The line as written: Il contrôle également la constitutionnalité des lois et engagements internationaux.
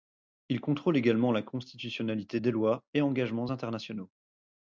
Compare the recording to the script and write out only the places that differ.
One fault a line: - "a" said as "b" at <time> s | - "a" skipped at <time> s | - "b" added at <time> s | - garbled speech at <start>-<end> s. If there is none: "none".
none